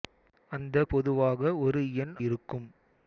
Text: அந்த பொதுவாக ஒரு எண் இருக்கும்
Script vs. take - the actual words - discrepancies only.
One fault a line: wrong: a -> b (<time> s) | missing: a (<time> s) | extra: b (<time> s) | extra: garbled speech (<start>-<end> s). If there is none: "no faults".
no faults